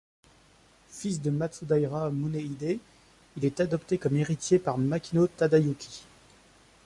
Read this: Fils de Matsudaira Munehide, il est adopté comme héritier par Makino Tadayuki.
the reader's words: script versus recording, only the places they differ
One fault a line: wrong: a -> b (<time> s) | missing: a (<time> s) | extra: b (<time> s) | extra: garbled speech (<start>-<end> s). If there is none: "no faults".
no faults